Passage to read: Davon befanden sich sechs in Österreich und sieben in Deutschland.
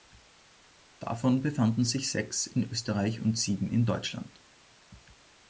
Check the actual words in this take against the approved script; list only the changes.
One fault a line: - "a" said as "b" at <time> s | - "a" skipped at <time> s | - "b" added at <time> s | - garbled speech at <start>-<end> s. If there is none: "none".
none